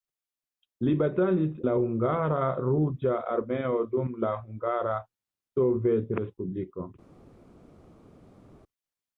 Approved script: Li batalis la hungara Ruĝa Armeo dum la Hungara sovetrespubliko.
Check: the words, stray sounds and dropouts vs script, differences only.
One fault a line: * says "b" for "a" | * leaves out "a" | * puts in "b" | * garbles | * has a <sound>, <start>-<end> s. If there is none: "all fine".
all fine